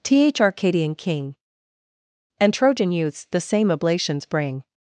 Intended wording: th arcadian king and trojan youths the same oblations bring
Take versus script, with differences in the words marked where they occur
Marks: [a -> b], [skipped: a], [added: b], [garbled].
th arcadian king and trojan youths the same oblations bring